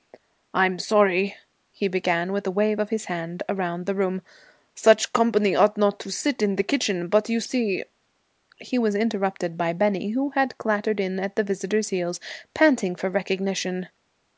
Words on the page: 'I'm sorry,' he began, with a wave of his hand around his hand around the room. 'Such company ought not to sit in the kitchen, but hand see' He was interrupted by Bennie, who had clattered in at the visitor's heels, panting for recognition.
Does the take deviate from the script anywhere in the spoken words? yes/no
yes